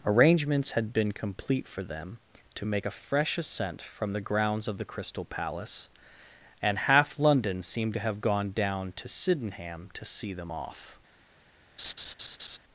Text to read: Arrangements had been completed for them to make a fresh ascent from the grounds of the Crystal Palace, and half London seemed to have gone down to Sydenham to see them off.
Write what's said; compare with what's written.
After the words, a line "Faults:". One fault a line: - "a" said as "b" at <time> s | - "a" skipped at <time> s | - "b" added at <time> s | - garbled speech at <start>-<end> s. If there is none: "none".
Arrangements had been complete for them to make a fresh ascent from the grounds of the Crystal Palace, and half London seemed to have gone down to Sydenham to see them off.
Faults:
- "completed" said as "complete" at 1.1 s